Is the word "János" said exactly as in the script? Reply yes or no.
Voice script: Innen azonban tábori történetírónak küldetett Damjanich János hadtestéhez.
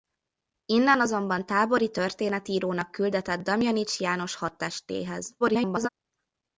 yes